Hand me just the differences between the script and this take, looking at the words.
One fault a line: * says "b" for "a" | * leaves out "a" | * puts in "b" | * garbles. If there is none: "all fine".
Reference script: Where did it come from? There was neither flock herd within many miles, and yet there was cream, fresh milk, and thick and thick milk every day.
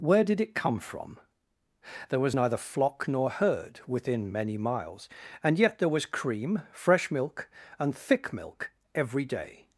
* puts in "nor"
* leaves out "and thick"